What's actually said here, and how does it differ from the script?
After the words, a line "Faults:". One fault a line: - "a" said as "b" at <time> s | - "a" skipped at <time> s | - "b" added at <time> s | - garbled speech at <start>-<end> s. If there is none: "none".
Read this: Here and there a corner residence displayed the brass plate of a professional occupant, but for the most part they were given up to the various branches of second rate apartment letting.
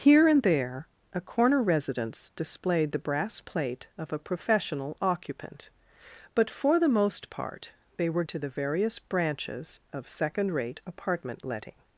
Here and there a corner residence displayed the brass plate of a professional occupant, but for the most part they were to the various branches of second rate apartment letting.
Faults:
- "given up" skipped at 8.2 s